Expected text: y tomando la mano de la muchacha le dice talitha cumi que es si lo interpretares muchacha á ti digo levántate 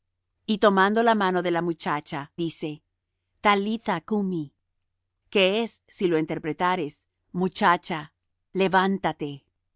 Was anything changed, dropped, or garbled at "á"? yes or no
yes